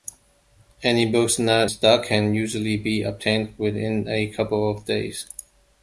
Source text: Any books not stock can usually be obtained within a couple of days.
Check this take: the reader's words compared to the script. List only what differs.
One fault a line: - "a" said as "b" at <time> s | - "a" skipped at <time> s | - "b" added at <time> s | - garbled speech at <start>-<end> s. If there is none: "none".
none